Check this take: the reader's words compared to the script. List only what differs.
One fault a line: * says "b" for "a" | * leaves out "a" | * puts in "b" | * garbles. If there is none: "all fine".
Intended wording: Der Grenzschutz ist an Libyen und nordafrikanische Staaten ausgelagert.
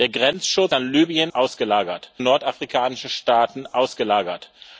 * leaves out "ist"
* says "ausgelagert" for "und"